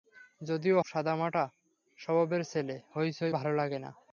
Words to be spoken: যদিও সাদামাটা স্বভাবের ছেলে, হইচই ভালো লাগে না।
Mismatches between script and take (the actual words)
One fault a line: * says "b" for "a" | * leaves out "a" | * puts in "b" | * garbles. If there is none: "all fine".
all fine